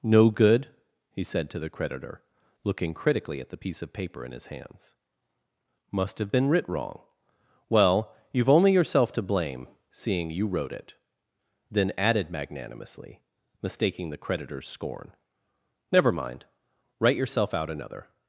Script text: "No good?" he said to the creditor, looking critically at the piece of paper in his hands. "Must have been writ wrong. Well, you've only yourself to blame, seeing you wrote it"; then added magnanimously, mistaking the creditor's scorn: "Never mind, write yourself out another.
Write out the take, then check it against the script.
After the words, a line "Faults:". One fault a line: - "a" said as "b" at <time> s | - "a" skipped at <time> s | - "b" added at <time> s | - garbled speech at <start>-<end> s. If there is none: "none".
"No good?" he said to the creditor, looking critically at the piece of paper in his hands. "Must have been writ wrong. Well, you've only yourself to blame, seeing you wrote it"; then added magnanimously, mistaking the creditor's scorn: "Never mind, write yourself out another.
Faults:
none